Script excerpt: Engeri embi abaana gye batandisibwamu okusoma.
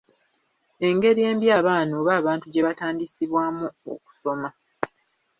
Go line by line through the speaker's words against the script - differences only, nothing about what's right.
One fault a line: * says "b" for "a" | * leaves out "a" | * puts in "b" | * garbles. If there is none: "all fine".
* puts in "oba abantu"